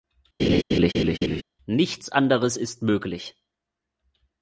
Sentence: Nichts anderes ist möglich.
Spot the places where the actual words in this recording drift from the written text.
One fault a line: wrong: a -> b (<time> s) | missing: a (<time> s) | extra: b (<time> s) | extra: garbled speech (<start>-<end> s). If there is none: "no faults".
no faults